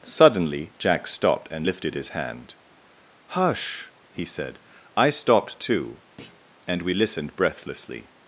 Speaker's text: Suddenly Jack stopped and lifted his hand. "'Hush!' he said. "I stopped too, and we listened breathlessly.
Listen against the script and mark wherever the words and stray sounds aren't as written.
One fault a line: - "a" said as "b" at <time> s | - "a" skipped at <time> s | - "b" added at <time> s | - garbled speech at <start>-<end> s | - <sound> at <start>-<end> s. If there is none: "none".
- thud at 6.2-6.5 s